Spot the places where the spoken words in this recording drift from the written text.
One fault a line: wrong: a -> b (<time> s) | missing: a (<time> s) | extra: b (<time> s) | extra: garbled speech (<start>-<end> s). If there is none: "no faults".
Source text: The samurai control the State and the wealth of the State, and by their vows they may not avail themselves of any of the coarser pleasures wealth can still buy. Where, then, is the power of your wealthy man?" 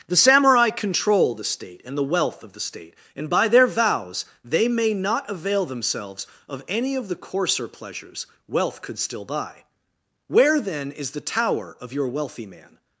wrong: can -> could (8.8 s)
wrong: power -> tower (11.2 s)